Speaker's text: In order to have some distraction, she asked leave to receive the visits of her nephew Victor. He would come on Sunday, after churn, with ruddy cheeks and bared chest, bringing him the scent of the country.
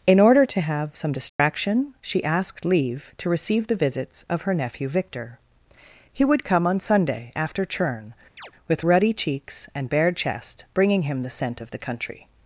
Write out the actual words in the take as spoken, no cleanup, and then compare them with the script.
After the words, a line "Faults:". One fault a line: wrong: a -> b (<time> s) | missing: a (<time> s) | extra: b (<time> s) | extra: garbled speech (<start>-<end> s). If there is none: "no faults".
In order to have some distraction, she asked leave to receive the visits of her nephew Victor. He would come on Sunday, after churn, with ruddy cheeks and bared chest, bringing him the scent of the country.
Faults:
no faults